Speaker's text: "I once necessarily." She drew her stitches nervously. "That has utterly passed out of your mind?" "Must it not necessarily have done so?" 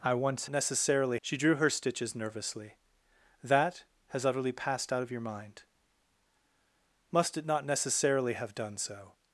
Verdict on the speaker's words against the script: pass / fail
pass